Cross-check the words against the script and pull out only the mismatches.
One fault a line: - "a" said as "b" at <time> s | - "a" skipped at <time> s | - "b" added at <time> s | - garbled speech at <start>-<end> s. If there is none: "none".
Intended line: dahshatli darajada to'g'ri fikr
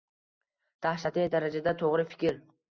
none